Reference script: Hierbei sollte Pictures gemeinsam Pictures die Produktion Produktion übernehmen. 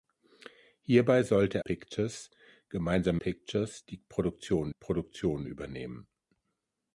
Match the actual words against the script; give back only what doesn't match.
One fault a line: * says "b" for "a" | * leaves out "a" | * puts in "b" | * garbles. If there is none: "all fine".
all fine